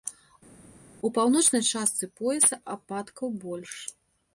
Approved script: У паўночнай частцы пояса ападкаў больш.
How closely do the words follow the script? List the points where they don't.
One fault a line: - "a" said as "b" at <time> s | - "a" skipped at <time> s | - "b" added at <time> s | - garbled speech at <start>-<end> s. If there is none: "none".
none